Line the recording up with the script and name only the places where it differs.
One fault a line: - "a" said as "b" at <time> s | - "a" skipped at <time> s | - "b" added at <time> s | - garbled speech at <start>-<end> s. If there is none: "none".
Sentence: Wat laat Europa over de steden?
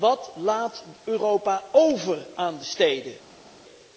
- "aan" added at 2.4 s